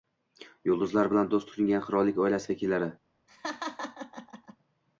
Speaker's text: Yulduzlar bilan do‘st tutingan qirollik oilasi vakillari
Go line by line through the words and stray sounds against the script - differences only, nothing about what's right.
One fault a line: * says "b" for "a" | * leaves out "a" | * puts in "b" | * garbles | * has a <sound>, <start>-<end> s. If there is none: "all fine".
* has a laugh, 3.3-4.6 s